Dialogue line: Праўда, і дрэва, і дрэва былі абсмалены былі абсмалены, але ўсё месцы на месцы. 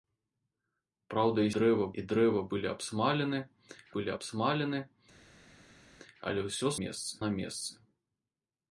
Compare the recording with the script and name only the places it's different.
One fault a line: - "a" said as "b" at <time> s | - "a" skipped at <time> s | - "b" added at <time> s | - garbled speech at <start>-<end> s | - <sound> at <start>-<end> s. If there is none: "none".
none